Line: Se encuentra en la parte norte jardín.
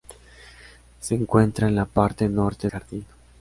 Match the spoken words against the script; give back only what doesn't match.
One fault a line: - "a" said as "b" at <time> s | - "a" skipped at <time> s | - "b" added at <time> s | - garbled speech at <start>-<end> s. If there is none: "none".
none